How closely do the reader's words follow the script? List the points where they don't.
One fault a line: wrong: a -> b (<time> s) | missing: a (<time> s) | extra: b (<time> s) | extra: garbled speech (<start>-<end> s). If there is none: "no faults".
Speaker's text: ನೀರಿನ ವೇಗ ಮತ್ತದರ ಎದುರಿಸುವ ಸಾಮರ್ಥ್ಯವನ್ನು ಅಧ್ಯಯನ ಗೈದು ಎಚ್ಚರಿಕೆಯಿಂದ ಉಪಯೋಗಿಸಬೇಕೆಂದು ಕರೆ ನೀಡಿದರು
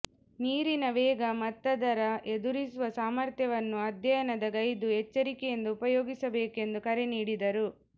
no faults